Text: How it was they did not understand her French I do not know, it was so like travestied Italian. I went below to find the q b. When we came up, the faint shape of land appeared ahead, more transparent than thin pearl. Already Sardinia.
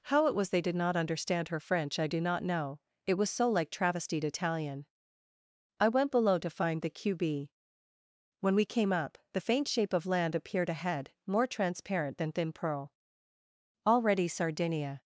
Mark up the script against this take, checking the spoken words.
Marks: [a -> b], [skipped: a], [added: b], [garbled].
How it was they did not understand her French I do not know, it was so like travestied Italian. I went below to find the q b. When we came up, the faint shape of land appeared ahead, more transparent than thin pearl. Already Sardinia.